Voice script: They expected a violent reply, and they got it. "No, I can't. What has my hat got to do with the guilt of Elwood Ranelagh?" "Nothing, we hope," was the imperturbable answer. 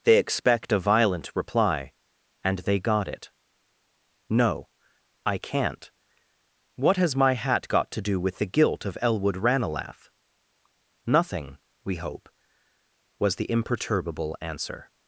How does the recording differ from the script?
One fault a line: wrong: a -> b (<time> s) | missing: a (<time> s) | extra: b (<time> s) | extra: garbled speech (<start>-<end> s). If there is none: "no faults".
wrong: expected -> expect (0.2 s)